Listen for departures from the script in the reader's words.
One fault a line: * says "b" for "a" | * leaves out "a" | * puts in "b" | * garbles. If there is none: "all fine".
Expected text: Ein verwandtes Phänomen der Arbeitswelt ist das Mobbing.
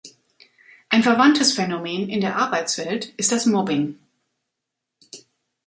* puts in "in"